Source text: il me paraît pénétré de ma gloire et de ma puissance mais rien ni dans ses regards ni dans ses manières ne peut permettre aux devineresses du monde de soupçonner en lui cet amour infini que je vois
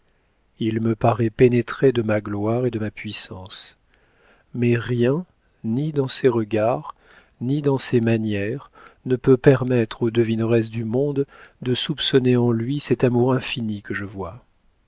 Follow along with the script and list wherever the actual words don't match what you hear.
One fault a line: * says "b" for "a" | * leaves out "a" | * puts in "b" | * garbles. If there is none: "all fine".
all fine